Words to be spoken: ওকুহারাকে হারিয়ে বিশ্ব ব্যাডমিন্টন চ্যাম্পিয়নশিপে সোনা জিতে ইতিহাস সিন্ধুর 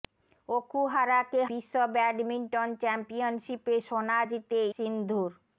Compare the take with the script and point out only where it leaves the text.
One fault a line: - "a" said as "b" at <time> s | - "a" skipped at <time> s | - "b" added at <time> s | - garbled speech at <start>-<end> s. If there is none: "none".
- "হারিয়ে" skipped at 1.4 s
- "ইতিহাস" skipped at 4.6 s